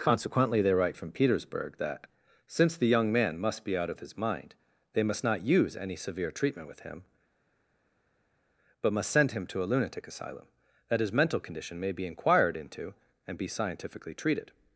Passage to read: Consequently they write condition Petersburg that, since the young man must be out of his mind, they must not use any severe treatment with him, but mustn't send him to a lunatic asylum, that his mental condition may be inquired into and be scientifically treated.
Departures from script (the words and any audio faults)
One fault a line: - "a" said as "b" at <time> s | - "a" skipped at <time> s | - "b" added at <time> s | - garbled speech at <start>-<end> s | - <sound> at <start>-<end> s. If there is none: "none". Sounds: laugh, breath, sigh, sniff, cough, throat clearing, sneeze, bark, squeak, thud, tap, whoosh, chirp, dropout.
- "condition" said as "from" at 1.0 s
- "mustn't" said as "must" at 8.9 s